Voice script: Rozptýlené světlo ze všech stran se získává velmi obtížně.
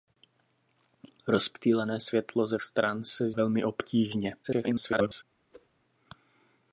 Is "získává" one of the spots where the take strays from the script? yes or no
yes